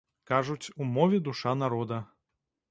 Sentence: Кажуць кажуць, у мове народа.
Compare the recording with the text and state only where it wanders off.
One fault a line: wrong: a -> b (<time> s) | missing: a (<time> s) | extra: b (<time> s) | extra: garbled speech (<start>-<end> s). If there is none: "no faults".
missing: кажуць (0.7 s)
extra: душа (1.2 s)